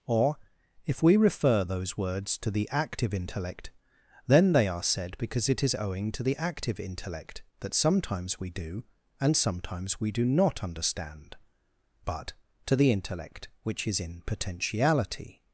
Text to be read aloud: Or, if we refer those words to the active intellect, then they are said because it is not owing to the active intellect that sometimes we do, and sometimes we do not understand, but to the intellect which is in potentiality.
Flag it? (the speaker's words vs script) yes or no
yes